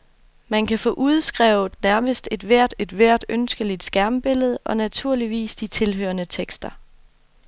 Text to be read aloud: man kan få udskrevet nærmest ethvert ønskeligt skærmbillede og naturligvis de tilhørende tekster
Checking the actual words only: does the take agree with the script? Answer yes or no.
no